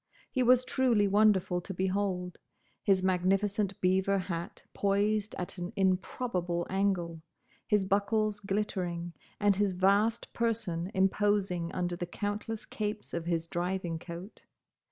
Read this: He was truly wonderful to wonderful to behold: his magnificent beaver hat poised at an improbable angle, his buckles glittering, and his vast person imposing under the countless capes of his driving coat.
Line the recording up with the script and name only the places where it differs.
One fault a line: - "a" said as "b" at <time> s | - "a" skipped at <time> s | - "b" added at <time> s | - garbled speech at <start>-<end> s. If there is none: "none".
- "wonderful to" skipped at 1.8 s